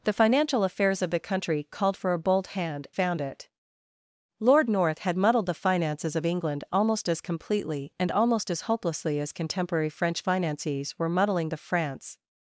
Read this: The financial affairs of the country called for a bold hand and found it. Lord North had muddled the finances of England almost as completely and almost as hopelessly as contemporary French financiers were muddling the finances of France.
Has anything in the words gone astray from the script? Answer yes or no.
yes